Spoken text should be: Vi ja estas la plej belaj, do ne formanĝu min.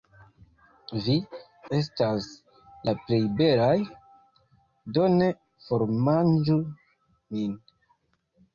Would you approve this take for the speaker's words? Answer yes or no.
no